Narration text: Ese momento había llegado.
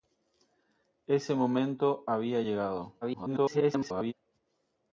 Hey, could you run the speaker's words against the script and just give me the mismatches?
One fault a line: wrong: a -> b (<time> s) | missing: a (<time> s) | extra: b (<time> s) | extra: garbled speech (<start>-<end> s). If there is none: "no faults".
extra: garbled speech (3.0-4.1 s)